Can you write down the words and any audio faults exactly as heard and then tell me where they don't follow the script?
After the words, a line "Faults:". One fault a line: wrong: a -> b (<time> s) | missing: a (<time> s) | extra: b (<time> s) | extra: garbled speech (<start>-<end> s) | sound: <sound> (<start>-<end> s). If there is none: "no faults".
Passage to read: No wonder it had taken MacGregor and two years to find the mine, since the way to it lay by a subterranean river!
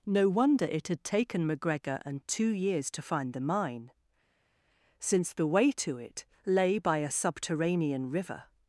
No wonder it had taken MacGregor and two years to find the mine, since the way to it lay by a subterranean river!
Faults:
no faults